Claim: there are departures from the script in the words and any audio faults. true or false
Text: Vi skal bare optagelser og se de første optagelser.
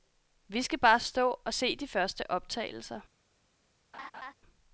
true